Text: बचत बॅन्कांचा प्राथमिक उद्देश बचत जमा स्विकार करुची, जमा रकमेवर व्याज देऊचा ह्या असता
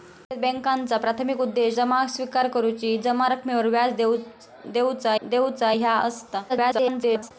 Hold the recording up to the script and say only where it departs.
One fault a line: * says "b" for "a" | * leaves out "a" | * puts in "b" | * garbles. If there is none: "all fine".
* leaves out "बचत"
* puts in "देऊचा"
* garbles